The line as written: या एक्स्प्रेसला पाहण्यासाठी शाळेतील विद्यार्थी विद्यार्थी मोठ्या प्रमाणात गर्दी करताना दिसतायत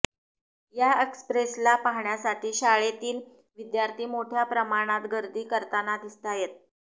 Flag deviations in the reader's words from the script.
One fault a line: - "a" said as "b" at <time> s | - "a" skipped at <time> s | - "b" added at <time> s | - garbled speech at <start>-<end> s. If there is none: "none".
- "विद्यार्थी" skipped at 4.1 s